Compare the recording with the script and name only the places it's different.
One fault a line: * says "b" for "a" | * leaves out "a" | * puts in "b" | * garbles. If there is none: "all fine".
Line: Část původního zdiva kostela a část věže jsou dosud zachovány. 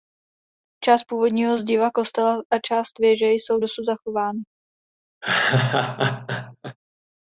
all fine